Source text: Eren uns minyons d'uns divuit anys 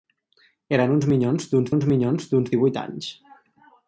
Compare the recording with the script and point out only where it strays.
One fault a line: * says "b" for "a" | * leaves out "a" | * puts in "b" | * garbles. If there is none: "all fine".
* puts in "uns minyons d'uns"